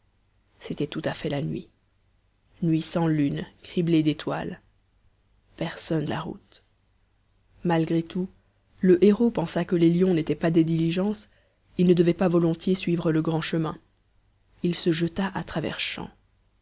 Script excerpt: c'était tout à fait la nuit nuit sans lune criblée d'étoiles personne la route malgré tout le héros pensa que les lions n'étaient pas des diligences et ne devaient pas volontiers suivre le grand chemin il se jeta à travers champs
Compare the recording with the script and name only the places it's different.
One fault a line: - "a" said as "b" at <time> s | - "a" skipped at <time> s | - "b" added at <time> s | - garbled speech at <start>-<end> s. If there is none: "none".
none